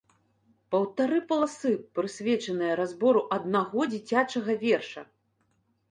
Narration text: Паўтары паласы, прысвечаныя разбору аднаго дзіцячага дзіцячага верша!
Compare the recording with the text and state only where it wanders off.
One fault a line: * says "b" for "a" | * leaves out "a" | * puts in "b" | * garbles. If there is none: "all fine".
* leaves out "дзіцячага"